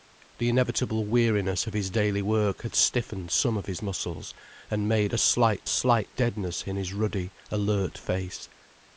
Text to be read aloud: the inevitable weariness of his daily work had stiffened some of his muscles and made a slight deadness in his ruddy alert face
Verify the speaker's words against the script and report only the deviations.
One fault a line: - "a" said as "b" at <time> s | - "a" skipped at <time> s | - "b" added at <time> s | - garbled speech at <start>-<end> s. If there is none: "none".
- "slight" added at 5.7 s